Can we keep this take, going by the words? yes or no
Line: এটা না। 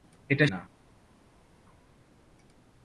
yes